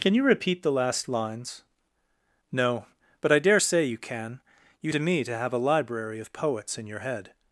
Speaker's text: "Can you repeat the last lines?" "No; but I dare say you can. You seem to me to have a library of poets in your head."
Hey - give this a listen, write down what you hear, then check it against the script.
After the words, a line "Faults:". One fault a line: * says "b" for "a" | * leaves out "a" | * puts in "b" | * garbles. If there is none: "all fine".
"Can you repeat the last lines?" "No; but I dare say you can. You to me to have a library of poets in your head."
Faults:
* leaves out "seem"